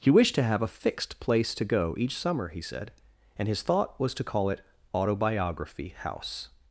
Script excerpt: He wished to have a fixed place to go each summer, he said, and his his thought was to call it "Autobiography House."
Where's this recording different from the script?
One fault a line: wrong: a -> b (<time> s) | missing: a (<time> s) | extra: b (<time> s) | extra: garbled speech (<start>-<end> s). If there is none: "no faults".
missing: his (3.6 s)